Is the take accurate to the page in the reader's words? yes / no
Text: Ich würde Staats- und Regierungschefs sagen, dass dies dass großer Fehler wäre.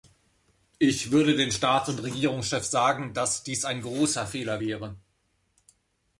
no